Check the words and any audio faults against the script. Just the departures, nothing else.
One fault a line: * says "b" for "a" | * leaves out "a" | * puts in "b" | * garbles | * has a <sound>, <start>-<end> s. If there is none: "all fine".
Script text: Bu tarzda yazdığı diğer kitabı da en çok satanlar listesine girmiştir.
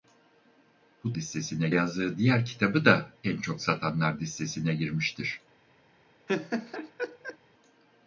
* says "listesine" for "tarzda"
* has a laugh, 6.3-7.4 s